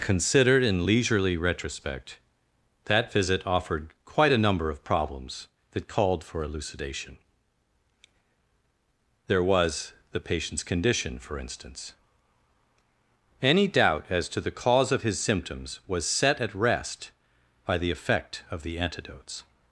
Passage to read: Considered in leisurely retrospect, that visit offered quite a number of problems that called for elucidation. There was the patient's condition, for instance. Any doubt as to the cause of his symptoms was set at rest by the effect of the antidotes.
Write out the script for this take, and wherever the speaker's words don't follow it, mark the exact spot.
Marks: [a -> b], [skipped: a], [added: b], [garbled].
Considered in leisurely retrospect, that visit offered quite a number of problems that called for elucidation. There was the patient's condition, for instance. Any doubt as to the cause of his symptoms was set at rest by the effect of the antidotes.